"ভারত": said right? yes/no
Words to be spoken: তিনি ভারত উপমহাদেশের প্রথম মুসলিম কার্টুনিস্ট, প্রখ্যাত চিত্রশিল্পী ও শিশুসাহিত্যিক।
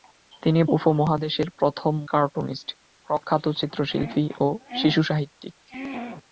no